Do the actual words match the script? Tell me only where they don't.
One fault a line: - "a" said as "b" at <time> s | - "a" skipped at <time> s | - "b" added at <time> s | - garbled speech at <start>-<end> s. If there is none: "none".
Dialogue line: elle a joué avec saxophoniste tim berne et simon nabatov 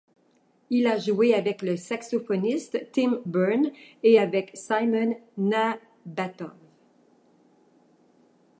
- "elle" said as "il" at 0.7 s
- "le" added at 1.6 s
- "avec" added at 4.2 s